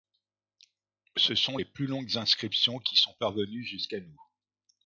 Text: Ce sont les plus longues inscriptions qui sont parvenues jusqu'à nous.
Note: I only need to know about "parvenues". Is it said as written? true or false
true